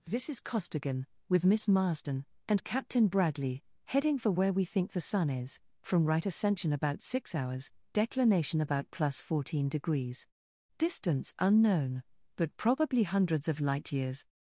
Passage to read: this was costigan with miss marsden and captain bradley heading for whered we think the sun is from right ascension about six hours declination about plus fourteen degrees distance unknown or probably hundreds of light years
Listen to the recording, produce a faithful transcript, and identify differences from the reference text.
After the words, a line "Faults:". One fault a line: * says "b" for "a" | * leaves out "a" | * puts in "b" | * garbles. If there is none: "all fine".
this is costigan with miss marsden and captain bradley heading for where we think the sun is from right ascension about six hours declination about plus fourteen degrees distance unknown but probably hundreds of light years
Faults:
* says "is" for "was"
* says "where" for "whered"
* says "but" for "or"